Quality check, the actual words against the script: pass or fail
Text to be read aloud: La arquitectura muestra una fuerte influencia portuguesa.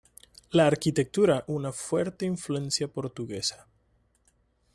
fail